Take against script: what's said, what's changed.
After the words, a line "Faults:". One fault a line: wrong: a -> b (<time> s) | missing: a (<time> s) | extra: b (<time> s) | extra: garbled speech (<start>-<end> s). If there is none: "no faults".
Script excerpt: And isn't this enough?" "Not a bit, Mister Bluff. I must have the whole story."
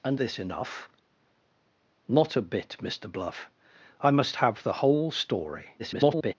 And this enough?" "Not a bit, Mister Bluff. I must have the whole story." [garbled]
Faults:
missing: isn't (0.2 s)
extra: garbled speech (5.8-6.3 s)